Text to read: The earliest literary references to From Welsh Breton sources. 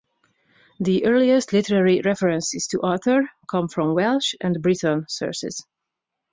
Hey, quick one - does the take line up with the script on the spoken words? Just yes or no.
no